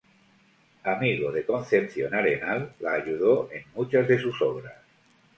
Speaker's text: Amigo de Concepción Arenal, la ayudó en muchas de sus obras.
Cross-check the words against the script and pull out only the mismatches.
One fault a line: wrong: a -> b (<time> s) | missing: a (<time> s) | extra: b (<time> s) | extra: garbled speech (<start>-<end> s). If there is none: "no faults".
no faults